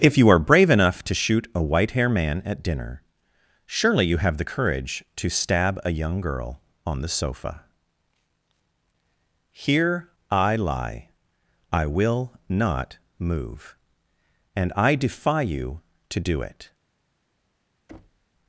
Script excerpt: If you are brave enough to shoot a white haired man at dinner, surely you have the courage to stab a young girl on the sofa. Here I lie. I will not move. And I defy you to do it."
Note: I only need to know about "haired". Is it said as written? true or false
false